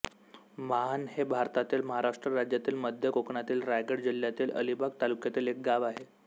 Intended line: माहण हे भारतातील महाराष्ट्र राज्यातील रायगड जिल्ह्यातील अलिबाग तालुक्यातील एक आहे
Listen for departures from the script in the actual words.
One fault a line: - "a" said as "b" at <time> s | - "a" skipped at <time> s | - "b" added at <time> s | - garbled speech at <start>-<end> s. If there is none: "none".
- "मध्य कोकणातील" added at 2.8 s
- "गाव" added at 5.6 s